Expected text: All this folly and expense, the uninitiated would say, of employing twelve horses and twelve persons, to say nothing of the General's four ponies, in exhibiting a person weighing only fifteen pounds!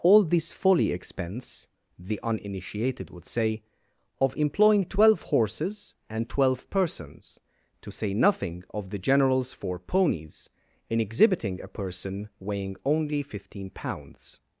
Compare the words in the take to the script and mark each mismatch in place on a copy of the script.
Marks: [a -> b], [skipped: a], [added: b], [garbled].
All this folly [skipped: and] expense, the uninitiated would say, of employing twelve horses and twelve persons, to say nothing of the General's four ponies, in exhibiting a person weighing only fifteen pounds!